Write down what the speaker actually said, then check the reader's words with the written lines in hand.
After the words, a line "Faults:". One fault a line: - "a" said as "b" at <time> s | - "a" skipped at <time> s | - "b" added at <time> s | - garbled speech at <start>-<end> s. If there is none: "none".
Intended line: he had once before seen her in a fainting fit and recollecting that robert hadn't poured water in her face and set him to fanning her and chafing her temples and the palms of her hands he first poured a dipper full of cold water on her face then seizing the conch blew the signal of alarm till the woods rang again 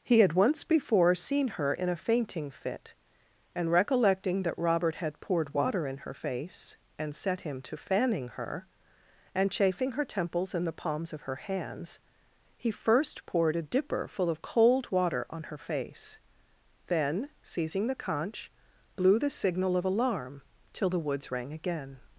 he had once before seen her in a fainting fit and recollecting that robert had poured water in her face and set him to fanning her and chafing her temples and the palms of her hands he first poured a dipper full of cold water on her face then seizing the conch blew the signal of alarm till the woods rang again
Faults:
- "hadn't" said as "had" at 5.0 s